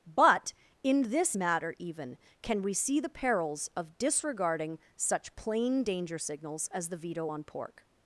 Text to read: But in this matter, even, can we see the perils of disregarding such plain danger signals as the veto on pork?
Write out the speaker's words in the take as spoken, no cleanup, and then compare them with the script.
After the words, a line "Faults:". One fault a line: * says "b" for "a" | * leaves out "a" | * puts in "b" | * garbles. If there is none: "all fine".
But in this matter, even, can we see the perils of disregarding such plain danger signals as the veto on pork?
Faults:
all fine